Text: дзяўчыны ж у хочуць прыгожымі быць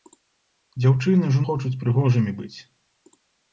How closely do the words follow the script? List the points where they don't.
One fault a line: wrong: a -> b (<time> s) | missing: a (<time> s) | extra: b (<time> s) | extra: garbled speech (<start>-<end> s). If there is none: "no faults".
no faults